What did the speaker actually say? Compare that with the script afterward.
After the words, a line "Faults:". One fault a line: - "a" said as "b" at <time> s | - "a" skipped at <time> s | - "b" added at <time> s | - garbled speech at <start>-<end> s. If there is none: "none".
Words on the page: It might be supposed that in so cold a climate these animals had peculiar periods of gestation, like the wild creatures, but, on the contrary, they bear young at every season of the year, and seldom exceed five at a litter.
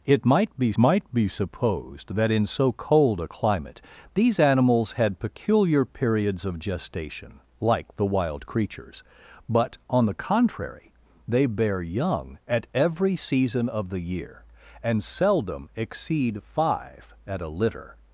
It might be might be supposed that in so cold a climate these animals had peculiar periods of gestation, like the wild creatures, but, on the contrary, they bear young at every season of the year, and seldom exceed five at a litter.
Faults:
- "might be" added at 0.8 s